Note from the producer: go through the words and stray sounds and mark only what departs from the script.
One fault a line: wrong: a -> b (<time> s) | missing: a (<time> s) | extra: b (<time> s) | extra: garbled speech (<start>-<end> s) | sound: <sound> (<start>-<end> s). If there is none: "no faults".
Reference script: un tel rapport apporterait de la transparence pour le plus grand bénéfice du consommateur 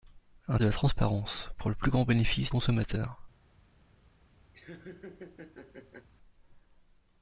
missing: tel rapport apporterait (0.6 s)
missing: du (2.5 s)
sound: laugh (4.5-6.1 s)